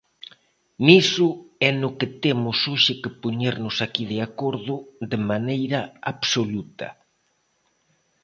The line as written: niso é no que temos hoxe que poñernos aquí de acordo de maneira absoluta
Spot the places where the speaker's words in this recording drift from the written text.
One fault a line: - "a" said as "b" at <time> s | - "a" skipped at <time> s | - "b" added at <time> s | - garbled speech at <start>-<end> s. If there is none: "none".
none